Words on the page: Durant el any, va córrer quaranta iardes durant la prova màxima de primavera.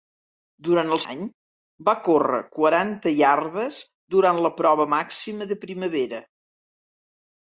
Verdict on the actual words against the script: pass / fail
pass